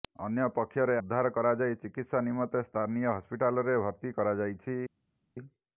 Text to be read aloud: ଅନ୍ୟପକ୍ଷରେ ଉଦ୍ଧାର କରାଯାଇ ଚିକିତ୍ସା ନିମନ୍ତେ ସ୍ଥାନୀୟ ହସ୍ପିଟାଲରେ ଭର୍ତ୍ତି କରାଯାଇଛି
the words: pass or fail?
pass